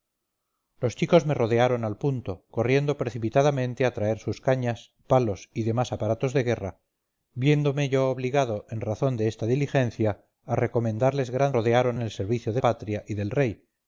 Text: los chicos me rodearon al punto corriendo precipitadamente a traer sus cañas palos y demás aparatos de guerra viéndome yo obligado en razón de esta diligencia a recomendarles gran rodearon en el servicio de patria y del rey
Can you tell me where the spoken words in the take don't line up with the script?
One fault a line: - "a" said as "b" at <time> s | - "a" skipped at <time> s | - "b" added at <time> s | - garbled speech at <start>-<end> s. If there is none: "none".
none